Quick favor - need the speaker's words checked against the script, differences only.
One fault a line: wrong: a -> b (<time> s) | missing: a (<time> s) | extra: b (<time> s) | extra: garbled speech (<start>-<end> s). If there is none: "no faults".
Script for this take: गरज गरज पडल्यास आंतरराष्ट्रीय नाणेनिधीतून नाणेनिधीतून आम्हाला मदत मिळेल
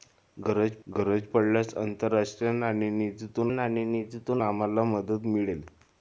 no faults